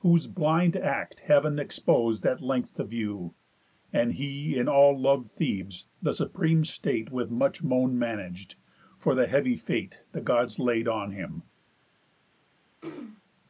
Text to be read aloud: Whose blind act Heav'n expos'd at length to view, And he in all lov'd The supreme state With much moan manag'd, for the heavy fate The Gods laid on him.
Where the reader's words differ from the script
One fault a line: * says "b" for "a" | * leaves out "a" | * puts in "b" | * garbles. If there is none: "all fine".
* puts in "Thebes"